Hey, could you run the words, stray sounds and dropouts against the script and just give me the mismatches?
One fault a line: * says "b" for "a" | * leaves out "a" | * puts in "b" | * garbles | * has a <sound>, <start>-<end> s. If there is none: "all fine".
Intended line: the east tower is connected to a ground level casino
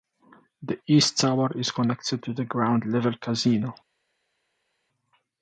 * says "the" for "a"